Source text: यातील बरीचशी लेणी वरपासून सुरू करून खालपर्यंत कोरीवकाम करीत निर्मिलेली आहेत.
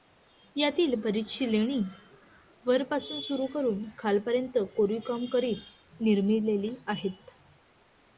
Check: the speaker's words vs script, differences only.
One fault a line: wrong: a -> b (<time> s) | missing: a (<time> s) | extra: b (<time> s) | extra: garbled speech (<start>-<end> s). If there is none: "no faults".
no faults